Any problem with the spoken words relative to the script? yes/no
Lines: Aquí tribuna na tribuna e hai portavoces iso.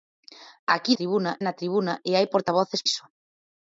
no